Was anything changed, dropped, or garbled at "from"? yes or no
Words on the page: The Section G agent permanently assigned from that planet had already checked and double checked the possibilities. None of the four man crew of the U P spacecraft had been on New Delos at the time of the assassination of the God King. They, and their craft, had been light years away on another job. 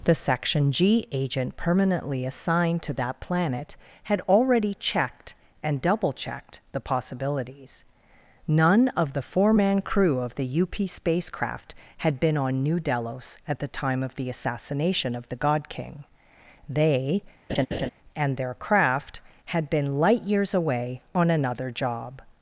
yes